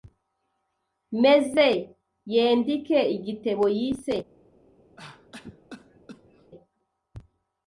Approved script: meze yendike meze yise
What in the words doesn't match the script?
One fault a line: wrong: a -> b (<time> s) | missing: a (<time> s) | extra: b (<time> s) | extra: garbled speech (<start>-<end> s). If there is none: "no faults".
wrong: meze -> igitebo (3.2 s)